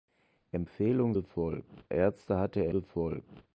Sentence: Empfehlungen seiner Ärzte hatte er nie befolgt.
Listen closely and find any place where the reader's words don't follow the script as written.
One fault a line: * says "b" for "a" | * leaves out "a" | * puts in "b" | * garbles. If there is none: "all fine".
* says "befolgt" for "seiner"
* leaves out "nie"